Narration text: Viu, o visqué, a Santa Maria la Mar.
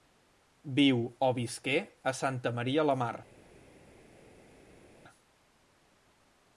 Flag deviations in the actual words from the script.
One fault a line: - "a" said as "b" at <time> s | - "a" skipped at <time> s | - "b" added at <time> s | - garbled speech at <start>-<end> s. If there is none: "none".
none